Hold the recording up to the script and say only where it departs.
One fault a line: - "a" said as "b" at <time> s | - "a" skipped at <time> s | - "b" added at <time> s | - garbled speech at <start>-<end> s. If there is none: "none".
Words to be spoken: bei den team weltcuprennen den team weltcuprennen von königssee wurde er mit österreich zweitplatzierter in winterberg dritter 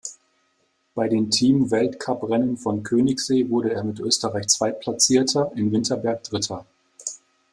- "den team weltcuprennen" skipped at 2.6 s